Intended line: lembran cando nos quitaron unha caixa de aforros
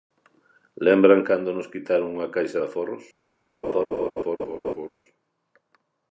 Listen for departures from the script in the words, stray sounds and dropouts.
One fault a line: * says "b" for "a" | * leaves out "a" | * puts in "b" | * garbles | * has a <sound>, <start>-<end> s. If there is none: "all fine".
* has a laugh, 3.6-4.9 s